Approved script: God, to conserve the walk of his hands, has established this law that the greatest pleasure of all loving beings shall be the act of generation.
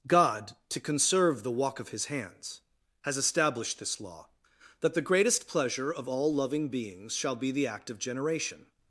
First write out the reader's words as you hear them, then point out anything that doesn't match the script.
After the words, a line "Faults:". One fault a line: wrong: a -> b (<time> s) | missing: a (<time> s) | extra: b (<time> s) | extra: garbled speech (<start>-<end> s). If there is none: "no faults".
God, to conserve the walk of his hands, has established this law that the greatest pleasure of all loving beings shall be the act of generation.
Faults:
no faults